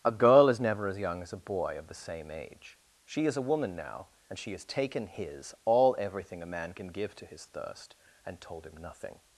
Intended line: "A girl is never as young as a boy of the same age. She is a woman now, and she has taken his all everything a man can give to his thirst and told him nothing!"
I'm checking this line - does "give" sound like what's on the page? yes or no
yes